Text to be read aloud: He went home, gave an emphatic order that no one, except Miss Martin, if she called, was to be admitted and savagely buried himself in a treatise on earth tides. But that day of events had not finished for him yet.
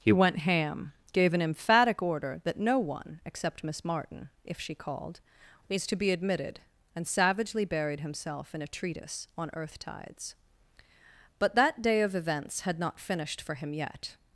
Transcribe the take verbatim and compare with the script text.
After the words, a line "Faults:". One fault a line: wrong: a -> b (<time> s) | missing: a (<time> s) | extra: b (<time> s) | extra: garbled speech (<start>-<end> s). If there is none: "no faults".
He went ham, gave an emphatic order that no one, except Miss Martin, if she called, was to be admitted and savagely buried himself in a treatise on earth tides. But that day of events had not finished for him yet.
Faults:
wrong: home -> ham (0.4 s)